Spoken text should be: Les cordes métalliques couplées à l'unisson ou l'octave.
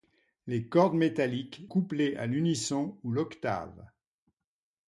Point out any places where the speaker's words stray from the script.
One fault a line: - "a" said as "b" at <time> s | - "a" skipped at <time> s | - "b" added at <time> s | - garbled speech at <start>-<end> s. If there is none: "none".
none